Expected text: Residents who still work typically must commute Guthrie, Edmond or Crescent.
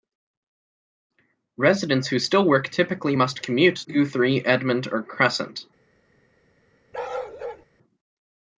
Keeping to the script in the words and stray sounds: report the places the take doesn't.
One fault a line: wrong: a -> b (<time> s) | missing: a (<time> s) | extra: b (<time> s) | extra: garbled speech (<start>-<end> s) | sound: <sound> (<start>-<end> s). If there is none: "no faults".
sound: bark (6.9-7.7 s)